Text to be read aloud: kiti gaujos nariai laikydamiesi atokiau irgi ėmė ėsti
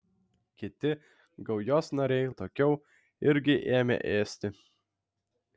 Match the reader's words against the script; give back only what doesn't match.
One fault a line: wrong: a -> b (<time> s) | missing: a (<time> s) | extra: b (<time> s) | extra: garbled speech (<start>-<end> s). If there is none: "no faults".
missing: laikydamiesi (2.3 s)